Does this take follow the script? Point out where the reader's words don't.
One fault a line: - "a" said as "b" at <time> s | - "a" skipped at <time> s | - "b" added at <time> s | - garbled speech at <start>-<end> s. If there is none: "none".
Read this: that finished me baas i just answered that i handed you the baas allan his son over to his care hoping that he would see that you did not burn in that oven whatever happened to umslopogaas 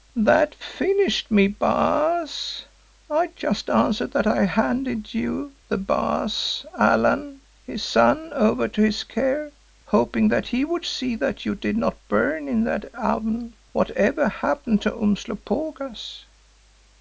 none